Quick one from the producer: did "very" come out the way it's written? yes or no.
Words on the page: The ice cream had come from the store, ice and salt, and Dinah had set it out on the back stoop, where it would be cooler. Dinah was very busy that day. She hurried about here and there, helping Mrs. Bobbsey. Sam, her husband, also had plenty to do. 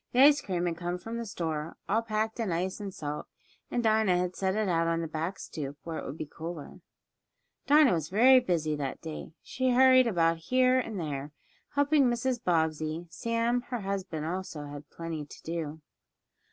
yes